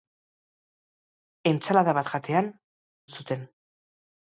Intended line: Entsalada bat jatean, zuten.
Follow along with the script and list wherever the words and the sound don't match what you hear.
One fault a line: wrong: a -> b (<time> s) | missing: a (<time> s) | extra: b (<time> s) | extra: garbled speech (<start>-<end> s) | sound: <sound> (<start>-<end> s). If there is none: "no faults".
no faults